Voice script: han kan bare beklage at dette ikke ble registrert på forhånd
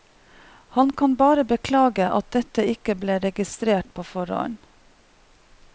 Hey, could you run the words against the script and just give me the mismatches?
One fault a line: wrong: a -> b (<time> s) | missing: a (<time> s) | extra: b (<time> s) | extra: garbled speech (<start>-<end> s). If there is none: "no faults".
no faults